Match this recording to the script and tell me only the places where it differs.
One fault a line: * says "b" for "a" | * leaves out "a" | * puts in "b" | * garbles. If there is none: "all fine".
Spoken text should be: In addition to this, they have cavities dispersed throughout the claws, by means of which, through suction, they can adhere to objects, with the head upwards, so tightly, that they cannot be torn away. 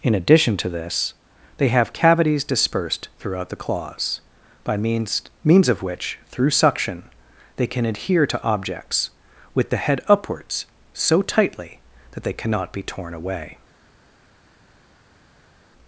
* puts in "means"